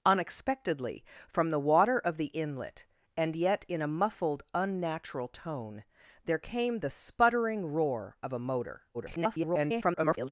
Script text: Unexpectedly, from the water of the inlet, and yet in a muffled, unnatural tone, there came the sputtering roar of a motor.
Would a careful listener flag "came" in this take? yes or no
no